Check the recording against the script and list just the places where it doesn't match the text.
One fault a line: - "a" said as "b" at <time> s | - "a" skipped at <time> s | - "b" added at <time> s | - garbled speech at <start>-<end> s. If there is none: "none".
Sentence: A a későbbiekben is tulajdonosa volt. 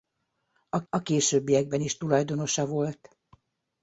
none